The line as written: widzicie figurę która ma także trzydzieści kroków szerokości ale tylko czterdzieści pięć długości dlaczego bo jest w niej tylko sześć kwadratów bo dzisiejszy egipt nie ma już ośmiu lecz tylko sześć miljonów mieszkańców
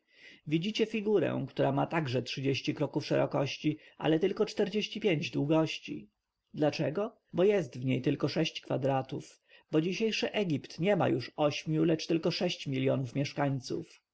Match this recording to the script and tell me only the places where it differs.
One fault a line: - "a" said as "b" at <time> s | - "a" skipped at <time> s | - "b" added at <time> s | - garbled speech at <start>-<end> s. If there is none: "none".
none